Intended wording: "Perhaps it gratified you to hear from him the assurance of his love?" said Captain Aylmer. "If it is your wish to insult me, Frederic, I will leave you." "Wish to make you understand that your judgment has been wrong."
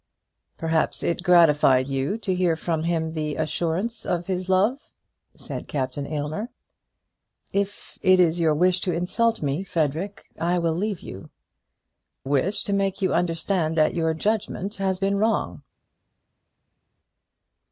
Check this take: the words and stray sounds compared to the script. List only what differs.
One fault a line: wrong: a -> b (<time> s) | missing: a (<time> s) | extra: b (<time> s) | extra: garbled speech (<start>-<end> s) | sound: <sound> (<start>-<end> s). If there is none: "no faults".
no faults